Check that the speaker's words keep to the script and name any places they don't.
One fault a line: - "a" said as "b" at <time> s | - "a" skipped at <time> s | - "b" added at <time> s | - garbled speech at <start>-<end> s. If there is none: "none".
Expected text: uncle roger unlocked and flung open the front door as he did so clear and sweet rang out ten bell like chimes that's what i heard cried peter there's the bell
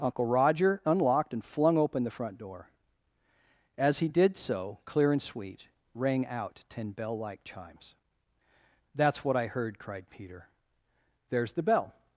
none